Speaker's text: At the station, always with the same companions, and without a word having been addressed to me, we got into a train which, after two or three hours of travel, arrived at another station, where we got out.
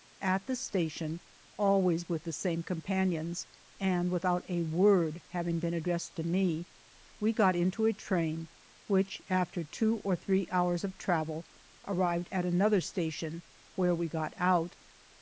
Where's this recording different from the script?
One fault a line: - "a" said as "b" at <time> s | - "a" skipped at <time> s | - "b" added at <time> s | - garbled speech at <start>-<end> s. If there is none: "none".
none